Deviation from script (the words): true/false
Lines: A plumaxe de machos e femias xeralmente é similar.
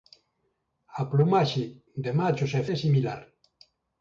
true